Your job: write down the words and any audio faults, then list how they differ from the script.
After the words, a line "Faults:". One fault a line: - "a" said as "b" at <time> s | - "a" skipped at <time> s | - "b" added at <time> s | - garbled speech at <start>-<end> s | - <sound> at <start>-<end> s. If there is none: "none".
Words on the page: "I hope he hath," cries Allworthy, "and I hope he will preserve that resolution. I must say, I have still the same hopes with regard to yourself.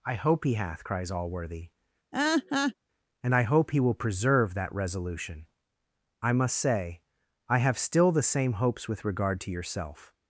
"I hope he hath," cries Allworthy, "and I hope he will preserve that resolution. I must say, I have still the same hopes with regard to yourself.
Faults:
- laugh at 2.1-2.7 s